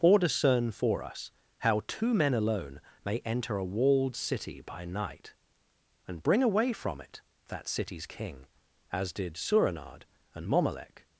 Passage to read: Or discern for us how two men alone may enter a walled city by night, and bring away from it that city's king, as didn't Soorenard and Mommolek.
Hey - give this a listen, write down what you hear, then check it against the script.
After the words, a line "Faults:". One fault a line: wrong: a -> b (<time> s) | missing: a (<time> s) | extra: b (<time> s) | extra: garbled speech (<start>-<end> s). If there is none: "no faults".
Or discern for us how two men alone may enter a walled city by night, and bring away from it that city's king, as did Soorenard and Mommolek.
Faults:
wrong: didn't -> did (9.1 s)